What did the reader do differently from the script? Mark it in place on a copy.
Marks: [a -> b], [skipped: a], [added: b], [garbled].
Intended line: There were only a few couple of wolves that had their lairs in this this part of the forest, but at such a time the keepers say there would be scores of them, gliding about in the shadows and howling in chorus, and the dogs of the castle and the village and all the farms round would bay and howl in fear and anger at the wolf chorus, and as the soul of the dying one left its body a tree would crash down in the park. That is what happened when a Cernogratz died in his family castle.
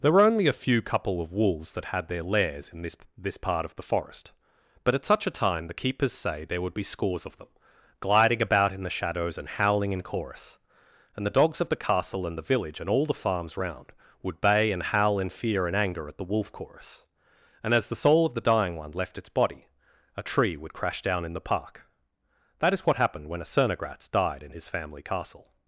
There were only a few couple of wolves that had their lairs in this this part of the forest, but at such a time the keepers say there would be scores of them, gliding about in the shadows and howling in chorus, and the dogs of the castle and the village and all the farms round would bay and howl in fear and anger at the wolf chorus, and as the soul of the dying one left its body a tree would crash down in the park. That is what happened when a Cernogratz died in his family castle.